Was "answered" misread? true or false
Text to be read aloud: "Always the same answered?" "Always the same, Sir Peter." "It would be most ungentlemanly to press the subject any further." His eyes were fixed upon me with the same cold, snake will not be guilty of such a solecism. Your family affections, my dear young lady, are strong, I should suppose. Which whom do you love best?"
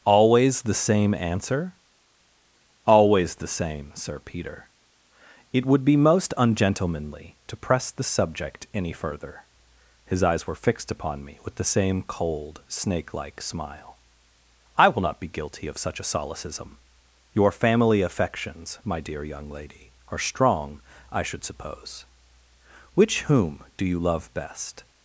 true